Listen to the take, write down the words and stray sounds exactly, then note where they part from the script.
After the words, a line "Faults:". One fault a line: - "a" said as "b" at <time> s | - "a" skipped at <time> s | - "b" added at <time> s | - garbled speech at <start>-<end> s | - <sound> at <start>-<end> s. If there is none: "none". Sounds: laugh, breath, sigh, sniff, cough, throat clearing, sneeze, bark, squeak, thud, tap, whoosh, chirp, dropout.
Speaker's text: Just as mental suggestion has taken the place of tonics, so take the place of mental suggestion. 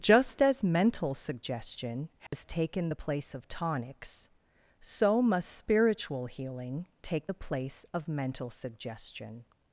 Just as mental suggestion has taken the place of tonics, so must spiritual healing take the place of mental suggestion.
Faults:
- dropout at 2.3-2.3 s
- "must spiritual healing" added at 5.2 s